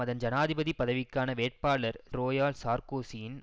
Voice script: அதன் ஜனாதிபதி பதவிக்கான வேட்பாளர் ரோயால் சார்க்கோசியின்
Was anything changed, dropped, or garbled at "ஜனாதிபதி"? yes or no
no